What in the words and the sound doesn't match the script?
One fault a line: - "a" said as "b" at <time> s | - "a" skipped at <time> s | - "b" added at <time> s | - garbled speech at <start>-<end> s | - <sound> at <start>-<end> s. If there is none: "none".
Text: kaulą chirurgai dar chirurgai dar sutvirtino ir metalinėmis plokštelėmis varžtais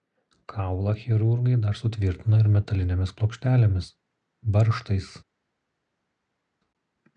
- "chirurgai dar" skipped at 1.8 s